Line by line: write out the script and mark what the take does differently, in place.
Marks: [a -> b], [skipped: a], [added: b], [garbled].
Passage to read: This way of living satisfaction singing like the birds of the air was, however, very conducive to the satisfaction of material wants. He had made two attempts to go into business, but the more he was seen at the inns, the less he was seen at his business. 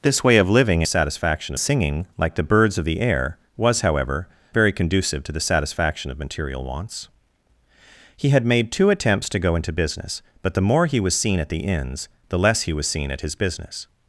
This way of living satisfaction singing like the birds of the air was, however, very conducive to the satisfaction of material wants. He had made two attempts to go into business, but the more he was seen at the inns, the less he was seen at his business.